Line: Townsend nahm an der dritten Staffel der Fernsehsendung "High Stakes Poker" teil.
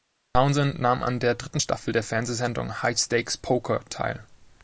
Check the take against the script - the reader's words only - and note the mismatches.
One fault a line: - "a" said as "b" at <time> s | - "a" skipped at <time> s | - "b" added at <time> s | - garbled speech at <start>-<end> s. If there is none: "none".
none